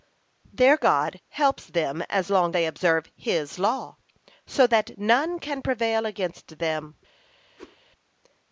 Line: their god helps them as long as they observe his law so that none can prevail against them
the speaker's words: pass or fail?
fail